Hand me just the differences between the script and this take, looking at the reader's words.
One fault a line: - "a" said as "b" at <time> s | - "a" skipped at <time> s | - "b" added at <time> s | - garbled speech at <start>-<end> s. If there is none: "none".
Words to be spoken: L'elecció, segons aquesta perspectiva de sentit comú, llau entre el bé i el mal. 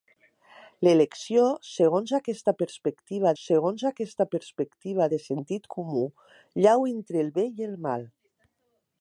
- "segons aquesta perspectiva" added at 3.4 s